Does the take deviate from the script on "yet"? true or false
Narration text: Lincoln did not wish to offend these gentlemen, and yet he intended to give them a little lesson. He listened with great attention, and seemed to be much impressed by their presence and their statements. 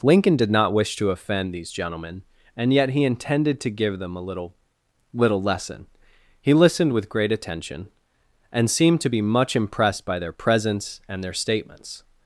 false